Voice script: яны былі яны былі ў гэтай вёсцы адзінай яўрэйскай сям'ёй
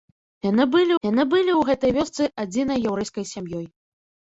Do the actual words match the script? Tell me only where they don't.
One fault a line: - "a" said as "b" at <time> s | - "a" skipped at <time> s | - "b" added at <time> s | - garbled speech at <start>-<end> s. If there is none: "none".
none